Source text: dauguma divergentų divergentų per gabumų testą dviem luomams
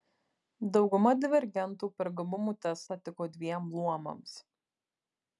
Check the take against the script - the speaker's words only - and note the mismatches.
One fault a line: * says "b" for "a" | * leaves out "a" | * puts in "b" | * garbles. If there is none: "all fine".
* leaves out "divergentų"
* puts in "tiko"